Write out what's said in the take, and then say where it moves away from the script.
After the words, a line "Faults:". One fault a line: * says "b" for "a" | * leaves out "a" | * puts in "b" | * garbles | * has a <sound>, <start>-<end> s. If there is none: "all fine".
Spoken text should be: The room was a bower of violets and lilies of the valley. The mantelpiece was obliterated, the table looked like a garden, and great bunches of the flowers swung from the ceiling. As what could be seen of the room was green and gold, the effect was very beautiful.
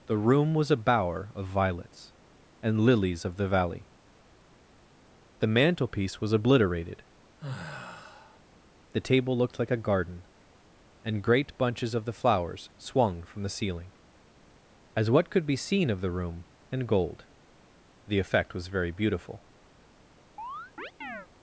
The room was a bower of violets and lilies of the valley. The mantelpiece was obliterated, the table looked like a garden, and great bunches of the flowers swung from the ceiling. As what could be seen of the room and gold, the effect was very beautiful.
Faults:
* has a sigh, 7.4-8.4 s
* leaves out "was green"
* has a chirp, 20.4-21.3 s